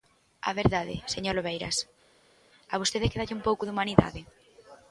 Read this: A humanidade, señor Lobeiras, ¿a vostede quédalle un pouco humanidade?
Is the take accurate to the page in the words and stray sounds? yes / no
no